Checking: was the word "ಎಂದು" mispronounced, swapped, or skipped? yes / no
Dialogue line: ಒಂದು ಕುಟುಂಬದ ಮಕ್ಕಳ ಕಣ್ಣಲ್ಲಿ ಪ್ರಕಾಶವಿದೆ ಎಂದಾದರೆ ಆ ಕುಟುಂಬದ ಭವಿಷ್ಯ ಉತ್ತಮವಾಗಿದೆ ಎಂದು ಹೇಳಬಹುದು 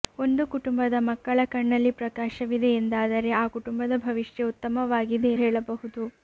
yes